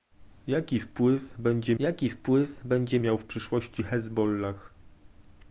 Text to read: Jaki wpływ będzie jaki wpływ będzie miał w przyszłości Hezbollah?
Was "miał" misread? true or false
false